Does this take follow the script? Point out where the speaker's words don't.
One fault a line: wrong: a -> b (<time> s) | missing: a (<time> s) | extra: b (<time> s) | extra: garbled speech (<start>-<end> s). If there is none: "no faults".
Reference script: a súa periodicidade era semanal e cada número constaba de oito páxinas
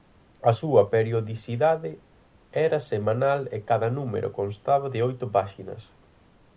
no faults